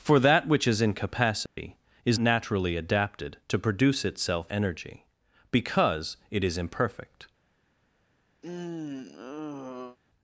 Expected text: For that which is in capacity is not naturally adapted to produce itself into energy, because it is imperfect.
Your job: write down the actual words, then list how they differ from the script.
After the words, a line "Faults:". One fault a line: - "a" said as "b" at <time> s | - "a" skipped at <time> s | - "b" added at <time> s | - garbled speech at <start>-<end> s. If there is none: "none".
For that which is in capacity is naturally adapted to produce itself energy, because it is imperfect.
Faults:
- "not" skipped at 2.2 s
- "into" skipped at 4.5 s